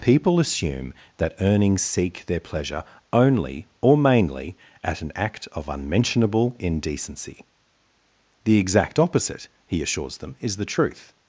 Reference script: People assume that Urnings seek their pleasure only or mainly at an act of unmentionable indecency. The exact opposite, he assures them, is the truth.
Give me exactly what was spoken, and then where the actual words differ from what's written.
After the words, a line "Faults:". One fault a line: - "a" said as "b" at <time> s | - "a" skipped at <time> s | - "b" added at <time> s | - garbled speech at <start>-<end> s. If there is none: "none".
People assume that Urnings seek their pleasure only or mainly at an act of unmentionable indecency. The exact opposite, he assures them, is the truth.
Faults:
none